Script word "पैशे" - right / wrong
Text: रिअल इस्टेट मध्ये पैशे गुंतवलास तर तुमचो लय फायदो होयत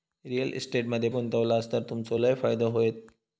wrong